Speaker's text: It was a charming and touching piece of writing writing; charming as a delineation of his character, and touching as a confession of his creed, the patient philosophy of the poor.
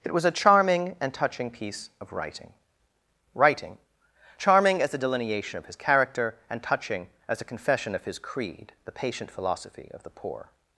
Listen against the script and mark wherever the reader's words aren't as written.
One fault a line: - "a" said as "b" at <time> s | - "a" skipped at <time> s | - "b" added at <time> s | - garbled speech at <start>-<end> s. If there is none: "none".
none